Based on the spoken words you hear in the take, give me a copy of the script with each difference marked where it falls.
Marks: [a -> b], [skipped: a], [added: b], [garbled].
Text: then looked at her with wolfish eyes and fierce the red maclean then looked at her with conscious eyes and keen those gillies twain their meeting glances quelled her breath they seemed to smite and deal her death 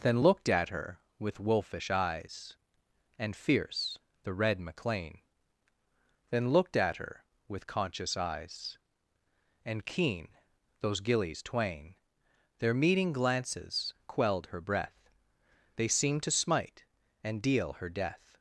then looked at her with wolfish eyes and fierce the red maclean then looked at her with conscious eyes and keen those gillies twain their meeting glances quelled her breath they seemed to smite and deal her death